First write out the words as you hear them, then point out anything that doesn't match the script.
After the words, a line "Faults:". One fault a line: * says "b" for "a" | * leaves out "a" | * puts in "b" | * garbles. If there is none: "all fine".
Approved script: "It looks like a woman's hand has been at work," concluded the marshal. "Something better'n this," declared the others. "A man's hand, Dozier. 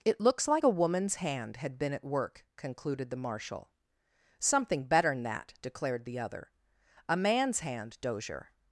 "It looks like a woman's hand had been at work," concluded the marshal. "Something better'n that," declared the other. "A man's hand, Dozier.
Faults:
* says "had" for "has"
* says "that" for "this"
* says "other" for "others"